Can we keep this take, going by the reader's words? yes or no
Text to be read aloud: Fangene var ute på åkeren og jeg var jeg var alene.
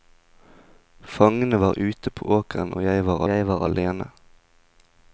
yes